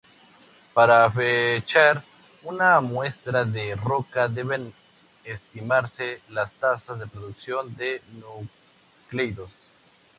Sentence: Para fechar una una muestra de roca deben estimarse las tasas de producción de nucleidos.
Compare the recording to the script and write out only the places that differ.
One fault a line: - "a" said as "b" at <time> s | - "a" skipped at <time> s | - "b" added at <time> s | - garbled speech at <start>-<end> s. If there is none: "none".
- "una" skipped at 2.8 s